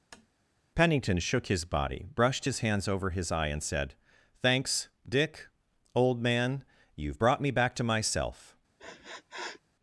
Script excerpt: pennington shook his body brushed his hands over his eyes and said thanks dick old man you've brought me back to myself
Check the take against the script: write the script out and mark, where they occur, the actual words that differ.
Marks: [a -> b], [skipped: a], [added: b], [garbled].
pennington shook his body brushed his hands over his [eyes -> eye] and said thanks dick old man you've brought me back to myself